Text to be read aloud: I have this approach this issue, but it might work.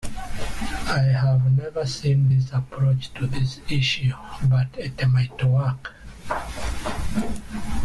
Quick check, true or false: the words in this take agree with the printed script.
false